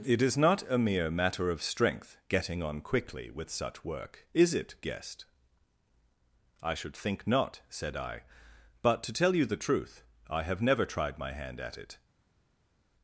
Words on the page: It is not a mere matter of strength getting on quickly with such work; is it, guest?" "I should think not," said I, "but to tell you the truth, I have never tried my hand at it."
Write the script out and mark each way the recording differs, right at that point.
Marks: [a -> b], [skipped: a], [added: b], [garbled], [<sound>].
It is not a mere matter of strength getting on quickly with such work; is it, guest?" "I should think not," said I, "but to tell you the truth, I have never tried my hand at it."